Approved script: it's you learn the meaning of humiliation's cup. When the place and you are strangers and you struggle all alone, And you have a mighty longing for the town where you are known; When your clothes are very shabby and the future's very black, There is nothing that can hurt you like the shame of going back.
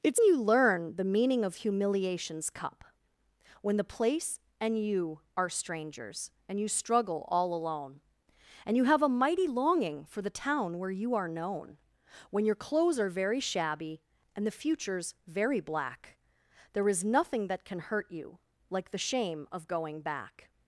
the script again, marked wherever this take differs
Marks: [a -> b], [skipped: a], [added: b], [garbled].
it's you learn the meaning of humiliation's cup. When the place and you are strangers and you struggle all alone, And you have a mighty longing for the town where you are known; When your clothes are very shabby and the future's very black, There is nothing that can hurt you like the shame of going back.